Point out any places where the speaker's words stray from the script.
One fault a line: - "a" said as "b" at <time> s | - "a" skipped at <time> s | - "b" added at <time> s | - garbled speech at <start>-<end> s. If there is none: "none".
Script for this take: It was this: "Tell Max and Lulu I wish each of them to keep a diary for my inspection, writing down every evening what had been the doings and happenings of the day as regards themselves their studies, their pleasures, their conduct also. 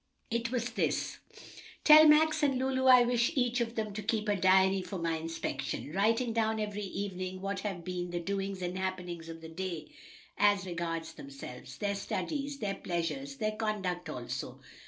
- "had" said as "have" at 7.6 s